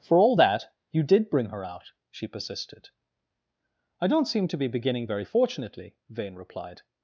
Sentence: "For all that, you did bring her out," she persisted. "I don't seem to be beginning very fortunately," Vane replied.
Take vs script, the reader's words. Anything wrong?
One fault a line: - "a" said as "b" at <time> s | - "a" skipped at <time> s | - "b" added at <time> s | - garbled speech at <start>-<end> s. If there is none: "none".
none